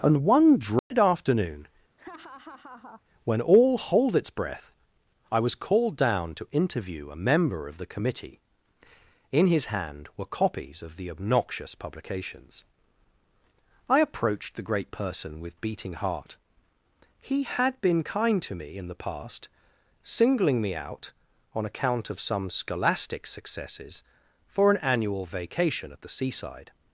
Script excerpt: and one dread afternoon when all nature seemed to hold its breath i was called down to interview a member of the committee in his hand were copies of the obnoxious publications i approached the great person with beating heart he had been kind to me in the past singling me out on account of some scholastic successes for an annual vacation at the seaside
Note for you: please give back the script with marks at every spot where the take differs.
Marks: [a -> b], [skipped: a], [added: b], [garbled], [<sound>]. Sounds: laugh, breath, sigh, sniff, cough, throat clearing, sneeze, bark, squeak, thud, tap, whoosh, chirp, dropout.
and one dread [dropout] afternoon [laugh] when all [skipped: nature seemed to] hold its breath i was called down to interview a member of the committee in his hand were copies of the obnoxious publications i approached the great person with beating heart he had been kind to me in the past singling me out on account of some scholastic successes for an annual vacation at the seaside